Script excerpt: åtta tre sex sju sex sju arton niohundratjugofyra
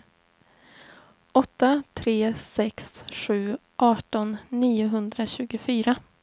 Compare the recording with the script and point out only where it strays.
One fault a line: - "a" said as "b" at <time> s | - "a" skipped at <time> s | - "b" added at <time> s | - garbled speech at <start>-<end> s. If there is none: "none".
- "sex sju" skipped at 3.6 s